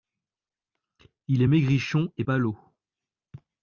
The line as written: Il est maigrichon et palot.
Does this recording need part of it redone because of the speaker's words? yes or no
no